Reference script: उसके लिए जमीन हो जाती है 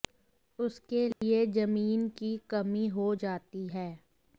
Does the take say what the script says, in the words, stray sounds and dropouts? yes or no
no